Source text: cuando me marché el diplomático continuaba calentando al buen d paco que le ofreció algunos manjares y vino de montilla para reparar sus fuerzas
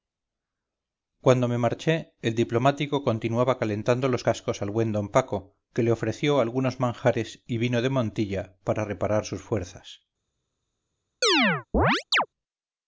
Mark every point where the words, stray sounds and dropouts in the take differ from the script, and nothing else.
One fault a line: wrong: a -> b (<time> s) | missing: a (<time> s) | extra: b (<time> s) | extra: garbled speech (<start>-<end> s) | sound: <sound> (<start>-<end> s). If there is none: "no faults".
extra: los cascos (4.1 s)
sound: chirp (11.2-12.3 s)